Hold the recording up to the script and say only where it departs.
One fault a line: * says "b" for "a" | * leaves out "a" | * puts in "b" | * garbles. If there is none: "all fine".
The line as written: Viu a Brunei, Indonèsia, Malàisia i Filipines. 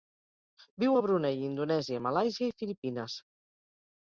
all fine